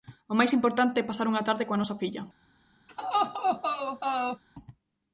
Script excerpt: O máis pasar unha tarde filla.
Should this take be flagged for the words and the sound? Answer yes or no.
yes